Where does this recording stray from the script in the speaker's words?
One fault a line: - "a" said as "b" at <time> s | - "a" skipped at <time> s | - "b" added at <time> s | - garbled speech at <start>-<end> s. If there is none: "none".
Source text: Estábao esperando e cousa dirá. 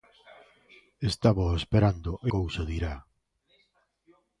none